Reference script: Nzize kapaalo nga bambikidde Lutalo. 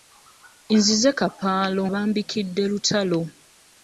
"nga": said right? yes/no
no